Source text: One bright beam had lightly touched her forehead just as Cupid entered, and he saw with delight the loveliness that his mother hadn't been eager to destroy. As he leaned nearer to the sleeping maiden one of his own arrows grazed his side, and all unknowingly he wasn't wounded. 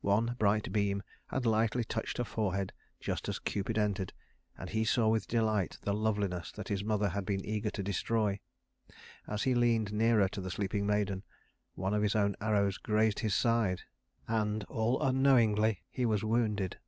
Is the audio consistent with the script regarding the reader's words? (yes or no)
no